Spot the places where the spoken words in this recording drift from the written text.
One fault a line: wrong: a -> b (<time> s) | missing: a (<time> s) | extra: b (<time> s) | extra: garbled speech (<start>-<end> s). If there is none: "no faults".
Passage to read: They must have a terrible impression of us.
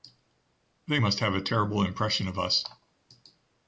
no faults